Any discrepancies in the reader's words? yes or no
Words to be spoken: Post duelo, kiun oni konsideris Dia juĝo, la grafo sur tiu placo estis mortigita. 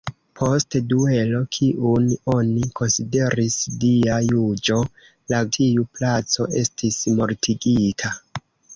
yes